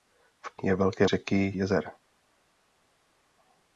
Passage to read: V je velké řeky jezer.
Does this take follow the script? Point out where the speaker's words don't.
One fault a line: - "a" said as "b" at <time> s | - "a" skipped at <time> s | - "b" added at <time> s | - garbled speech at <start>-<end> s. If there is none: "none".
none